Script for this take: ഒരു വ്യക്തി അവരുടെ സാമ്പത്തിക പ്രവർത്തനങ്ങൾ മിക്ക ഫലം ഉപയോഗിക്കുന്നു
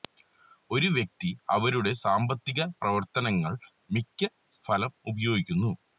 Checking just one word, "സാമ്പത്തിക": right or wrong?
right